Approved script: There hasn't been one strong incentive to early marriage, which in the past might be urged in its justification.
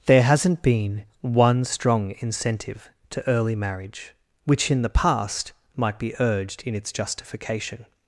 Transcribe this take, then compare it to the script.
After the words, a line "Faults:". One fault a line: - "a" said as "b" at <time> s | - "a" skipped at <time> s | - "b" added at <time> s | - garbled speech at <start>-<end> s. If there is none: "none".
There hasn't been one strong incentive to early marriage, which in the past might be urged in its justification.
Faults:
none